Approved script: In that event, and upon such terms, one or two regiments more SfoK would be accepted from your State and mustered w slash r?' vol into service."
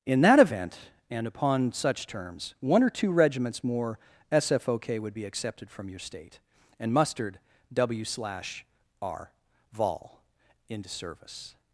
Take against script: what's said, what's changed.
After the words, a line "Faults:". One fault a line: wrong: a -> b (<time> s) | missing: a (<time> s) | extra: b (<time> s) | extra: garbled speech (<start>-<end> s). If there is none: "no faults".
In that event, and upon such terms, one or two regiments more SfoK would be accepted from your State and mustered w slash r?' vol into service."
Faults:
no faults